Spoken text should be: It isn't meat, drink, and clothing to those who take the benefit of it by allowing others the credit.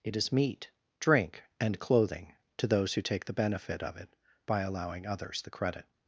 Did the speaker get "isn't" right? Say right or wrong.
wrong